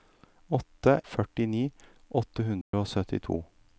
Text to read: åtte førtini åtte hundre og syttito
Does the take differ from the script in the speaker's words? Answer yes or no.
no